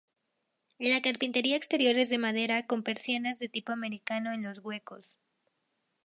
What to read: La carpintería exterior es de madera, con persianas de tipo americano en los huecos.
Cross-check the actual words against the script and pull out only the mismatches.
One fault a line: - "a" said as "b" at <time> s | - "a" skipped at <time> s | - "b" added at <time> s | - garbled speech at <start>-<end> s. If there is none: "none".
none